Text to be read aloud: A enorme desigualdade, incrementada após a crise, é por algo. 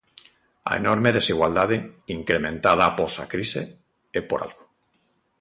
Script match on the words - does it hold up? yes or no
yes